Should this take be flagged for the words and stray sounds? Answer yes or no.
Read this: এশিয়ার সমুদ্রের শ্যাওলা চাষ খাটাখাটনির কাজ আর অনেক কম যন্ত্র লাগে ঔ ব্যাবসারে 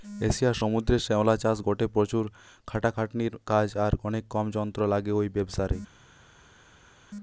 yes